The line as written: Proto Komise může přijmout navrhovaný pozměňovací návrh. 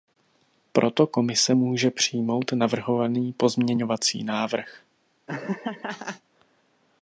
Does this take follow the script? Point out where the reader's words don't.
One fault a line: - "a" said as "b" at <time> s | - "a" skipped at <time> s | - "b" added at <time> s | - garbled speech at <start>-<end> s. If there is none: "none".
none